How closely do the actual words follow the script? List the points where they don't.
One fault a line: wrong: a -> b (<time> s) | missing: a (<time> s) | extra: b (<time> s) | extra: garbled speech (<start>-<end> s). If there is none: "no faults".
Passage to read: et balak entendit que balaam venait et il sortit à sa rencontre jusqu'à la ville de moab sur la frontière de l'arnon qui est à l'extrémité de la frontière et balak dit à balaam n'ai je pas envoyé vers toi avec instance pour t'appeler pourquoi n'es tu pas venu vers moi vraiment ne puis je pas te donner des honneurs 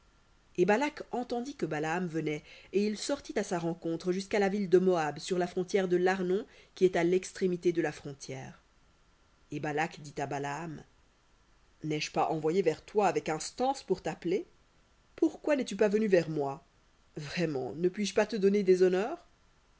no faults